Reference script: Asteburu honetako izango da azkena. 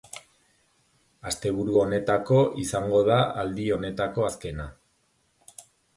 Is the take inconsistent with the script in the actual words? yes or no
yes